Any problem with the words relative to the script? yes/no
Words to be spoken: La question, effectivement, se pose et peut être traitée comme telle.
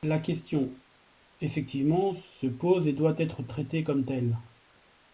yes